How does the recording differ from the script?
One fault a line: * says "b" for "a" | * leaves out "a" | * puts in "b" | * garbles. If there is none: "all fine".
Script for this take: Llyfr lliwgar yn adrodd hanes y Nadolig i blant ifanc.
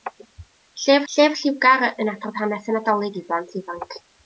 * puts in "llyfr"